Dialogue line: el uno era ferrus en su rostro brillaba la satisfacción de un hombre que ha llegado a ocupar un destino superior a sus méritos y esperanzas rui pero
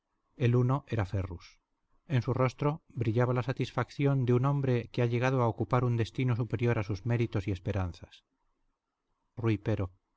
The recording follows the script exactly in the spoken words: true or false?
true